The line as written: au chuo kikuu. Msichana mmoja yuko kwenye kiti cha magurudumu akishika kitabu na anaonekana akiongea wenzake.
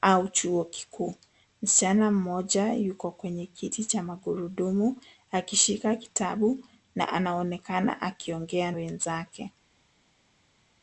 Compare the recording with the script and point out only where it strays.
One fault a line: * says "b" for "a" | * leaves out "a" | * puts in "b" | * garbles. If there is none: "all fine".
all fine